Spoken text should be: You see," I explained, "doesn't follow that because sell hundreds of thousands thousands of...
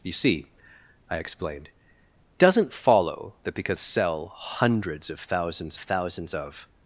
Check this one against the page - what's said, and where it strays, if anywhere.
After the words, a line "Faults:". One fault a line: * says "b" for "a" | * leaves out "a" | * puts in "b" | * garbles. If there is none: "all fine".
You see," I explained, "doesn't follow that because sell hundreds of thousands thousands of...
Faults:
all fine